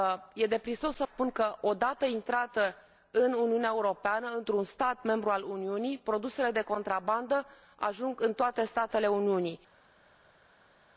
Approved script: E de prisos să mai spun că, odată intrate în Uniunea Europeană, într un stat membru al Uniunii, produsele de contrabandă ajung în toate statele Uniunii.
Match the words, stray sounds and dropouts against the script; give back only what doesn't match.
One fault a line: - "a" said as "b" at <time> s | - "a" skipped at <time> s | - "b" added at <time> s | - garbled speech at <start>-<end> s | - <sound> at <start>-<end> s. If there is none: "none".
- "mai" skipped at 1.1 s